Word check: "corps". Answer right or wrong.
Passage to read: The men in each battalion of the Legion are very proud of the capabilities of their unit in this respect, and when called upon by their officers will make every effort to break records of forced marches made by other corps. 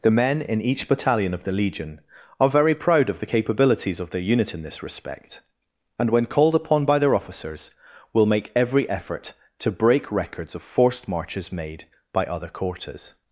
wrong